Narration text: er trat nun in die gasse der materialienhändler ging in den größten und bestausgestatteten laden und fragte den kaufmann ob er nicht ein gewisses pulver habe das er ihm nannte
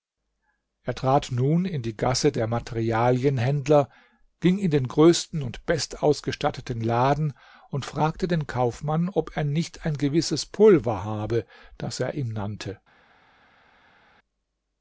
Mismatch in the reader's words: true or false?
false